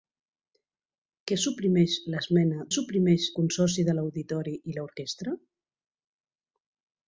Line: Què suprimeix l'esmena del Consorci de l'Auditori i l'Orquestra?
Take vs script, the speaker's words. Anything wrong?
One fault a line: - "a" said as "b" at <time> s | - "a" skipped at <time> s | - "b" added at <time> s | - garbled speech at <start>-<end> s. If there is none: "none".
- "del" said as "suprimeix" at 2.7 s